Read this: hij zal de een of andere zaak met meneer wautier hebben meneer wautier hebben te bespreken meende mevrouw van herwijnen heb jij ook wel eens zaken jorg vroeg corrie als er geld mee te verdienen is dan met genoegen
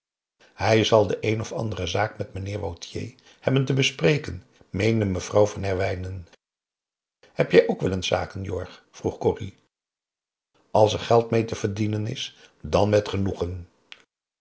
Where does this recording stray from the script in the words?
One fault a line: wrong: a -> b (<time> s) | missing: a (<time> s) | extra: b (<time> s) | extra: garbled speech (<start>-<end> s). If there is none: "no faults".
missing: meneer wautier hebben (3.6 s)